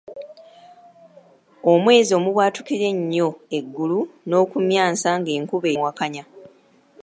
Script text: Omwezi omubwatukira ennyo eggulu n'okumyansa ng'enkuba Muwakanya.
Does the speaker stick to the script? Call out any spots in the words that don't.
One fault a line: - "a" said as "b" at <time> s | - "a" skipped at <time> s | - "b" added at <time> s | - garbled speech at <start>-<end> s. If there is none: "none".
none